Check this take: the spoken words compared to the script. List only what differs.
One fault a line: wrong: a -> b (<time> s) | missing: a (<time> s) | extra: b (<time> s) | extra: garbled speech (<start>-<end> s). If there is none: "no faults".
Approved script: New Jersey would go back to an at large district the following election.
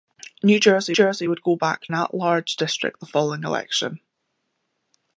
extra: Jersey (0.9 s)
missing: to (1.9 s)